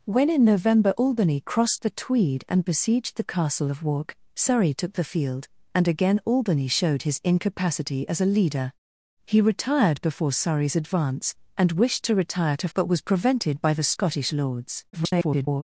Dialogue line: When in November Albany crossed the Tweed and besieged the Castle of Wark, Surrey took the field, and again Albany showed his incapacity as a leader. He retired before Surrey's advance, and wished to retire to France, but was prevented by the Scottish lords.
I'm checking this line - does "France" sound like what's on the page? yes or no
no